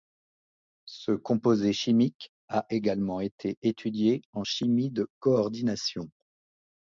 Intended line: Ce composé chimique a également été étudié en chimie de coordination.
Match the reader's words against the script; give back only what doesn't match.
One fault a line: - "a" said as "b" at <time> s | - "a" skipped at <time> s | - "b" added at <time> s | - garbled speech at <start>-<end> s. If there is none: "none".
none